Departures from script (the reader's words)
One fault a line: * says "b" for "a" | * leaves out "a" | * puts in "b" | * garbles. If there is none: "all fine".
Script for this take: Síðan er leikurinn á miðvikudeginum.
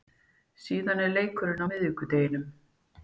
all fine